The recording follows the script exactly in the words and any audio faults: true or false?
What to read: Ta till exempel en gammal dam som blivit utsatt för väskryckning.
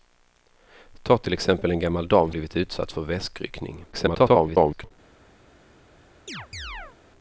false